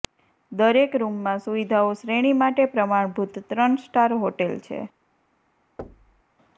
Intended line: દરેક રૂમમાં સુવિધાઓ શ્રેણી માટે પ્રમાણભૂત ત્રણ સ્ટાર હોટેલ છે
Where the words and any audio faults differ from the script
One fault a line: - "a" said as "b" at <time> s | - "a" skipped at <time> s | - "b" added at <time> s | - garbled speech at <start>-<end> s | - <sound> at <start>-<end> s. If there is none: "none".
- thud at 5.8-6.2 s